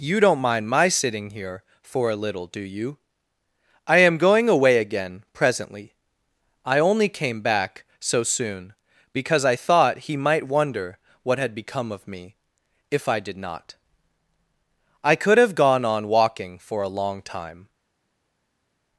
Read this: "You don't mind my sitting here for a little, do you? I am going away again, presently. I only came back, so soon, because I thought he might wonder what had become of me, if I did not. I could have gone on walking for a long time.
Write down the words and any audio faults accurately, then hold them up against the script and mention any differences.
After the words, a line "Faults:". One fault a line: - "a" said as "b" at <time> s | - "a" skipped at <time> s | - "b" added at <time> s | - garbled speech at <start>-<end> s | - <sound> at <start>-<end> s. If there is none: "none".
"You don't mind my sitting here for a little, do you? I am going away again, presently. I only came back, so soon, because I thought he might wonder what had become of me, if I did not. I could have gone on walking for a long time.
Faults:
none